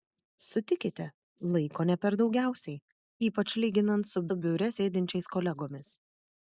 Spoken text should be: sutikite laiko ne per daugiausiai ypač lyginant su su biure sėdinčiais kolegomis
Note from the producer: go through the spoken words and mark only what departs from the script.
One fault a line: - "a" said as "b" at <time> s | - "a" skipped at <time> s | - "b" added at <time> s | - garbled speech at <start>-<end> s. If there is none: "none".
none